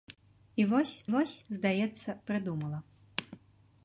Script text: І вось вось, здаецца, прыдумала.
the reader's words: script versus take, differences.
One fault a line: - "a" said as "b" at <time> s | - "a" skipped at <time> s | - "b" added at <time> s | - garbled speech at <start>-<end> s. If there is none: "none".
none